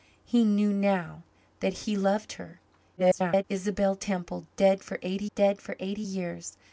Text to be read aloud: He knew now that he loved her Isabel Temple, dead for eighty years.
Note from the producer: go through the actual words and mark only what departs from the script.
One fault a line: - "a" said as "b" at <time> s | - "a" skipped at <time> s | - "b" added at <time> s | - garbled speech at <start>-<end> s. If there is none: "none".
- garbled speech at 3.0-3.4 s
- "dead for eighty" added at 5.3 s